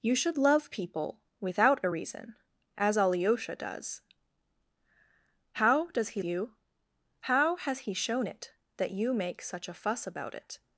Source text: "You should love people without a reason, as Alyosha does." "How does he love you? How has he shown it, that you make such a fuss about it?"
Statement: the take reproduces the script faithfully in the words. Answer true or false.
false